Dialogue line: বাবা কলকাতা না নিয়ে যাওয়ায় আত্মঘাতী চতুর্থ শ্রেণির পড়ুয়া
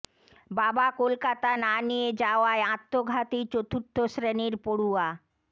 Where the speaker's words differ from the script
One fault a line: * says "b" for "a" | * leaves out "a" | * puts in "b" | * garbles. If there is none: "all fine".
all fine